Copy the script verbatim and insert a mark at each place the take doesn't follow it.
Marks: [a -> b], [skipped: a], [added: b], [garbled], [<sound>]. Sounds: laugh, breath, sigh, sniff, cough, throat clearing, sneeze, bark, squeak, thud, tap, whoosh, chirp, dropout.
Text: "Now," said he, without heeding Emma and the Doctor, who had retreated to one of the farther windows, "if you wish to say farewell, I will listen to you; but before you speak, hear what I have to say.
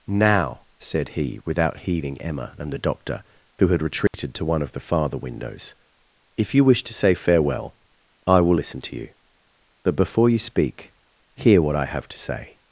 "Now," said he, without heeding Emma and the Doctor, who had retreated [dropout] to one of the farther windows, "if you wish to say farewell, I will listen to you; but before you speak, hear what I have to say.